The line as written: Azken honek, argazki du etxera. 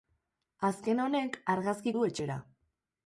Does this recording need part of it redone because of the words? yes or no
no